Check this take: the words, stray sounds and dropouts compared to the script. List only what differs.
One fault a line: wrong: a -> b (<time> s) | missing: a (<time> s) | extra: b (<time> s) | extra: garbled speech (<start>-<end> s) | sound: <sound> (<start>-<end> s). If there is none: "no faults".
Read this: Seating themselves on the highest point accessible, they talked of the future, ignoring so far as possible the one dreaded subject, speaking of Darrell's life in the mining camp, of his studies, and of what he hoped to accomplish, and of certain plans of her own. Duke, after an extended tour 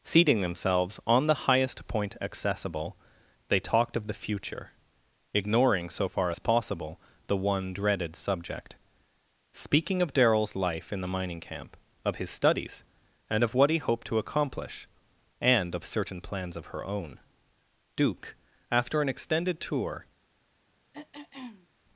sound: throat clearing (20.9-21.7 s)